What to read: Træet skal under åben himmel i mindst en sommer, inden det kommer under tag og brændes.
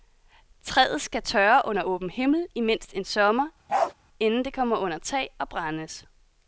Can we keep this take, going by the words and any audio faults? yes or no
no